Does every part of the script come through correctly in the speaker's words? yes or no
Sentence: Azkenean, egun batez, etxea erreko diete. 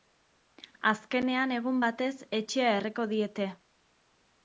yes